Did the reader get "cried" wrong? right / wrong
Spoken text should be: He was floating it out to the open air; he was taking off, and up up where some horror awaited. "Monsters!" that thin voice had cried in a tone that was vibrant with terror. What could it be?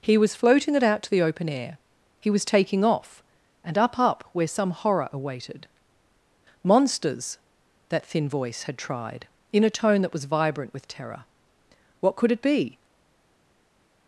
wrong